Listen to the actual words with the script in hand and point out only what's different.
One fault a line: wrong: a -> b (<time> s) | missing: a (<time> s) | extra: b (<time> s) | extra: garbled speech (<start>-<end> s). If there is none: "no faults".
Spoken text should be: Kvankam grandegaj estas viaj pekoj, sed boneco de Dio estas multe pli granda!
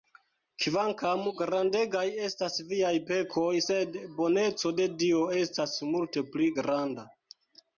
no faults